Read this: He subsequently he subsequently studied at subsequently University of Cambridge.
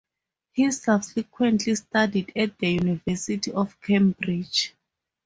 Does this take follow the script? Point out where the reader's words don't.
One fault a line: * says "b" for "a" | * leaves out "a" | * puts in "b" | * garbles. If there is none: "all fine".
* leaves out "he subsequently"
* says "the" for "subsequently"